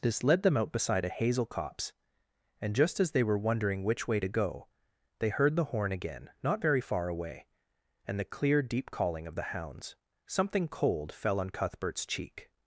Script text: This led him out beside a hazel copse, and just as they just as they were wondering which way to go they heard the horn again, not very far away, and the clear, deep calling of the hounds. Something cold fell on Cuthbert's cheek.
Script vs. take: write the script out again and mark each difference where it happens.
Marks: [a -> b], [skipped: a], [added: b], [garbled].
This led [him -> them] out beside a hazel copse, and just as they [skipped: just as they] were wondering which way to go they heard the horn again, not very far away, and the clear, deep calling of the hounds. Something cold fell on Cuthbert's cheek.